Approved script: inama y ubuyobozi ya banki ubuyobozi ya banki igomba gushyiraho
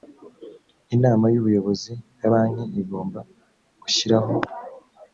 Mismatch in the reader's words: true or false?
true